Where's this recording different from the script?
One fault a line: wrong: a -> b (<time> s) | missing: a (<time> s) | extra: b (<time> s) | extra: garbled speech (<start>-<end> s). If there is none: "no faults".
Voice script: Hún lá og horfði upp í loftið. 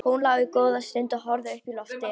extra: góða stund (0.5 s)